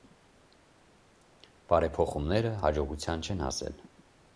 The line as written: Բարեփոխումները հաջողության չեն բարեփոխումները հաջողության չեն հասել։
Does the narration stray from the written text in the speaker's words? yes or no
yes